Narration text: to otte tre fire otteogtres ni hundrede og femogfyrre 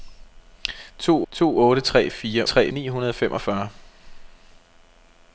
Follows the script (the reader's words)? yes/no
no